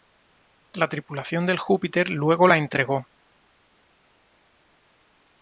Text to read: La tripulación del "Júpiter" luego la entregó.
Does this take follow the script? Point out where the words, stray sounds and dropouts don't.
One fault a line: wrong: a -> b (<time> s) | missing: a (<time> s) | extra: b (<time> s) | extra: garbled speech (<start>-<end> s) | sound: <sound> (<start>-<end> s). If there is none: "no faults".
no faults